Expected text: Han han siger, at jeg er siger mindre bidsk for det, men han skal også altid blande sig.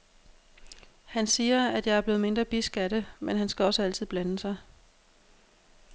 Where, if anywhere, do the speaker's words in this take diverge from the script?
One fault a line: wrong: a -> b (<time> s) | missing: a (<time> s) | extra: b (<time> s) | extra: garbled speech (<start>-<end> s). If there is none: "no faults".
missing: han (1.3 s)
wrong: siger -> blevet (2.0 s)
wrong: for -> af (2.8 s)